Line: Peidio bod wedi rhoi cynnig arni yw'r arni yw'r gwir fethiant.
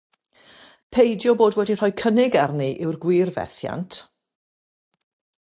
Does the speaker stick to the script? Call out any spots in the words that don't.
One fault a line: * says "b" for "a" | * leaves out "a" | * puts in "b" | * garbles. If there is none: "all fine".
* leaves out "arni yw'r"